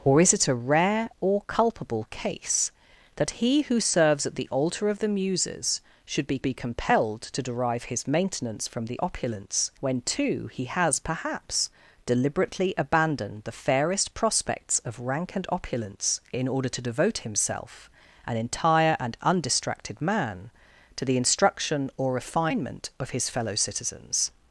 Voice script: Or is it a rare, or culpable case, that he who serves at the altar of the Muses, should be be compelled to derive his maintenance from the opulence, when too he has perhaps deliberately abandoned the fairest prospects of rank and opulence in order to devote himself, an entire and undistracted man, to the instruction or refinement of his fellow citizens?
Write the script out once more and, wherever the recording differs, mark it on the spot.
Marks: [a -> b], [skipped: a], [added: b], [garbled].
Or is it a rare, or culpable case, that he who serves at the altar of the Muses, should be be compelled to derive his maintenance from the opulence, when too he has perhaps deliberately abandoned the fairest prospects of rank and opulence in order to devote himself, an entire and undistracted man, to the instruction or refinement of his fellow citizens?